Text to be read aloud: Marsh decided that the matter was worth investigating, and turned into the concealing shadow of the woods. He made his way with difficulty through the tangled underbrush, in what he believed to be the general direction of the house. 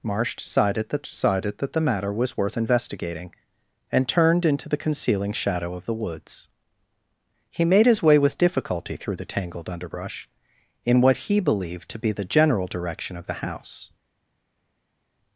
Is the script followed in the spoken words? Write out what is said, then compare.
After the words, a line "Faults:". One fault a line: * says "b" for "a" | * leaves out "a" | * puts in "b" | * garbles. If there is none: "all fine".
Marsh decided that decided that the matter was worth investigating, and turned into the concealing shadow of the woods. He made his way with difficulty through the tangled underbrush, in what he believed to be the general direction of the house.
Faults:
* puts in "decided that"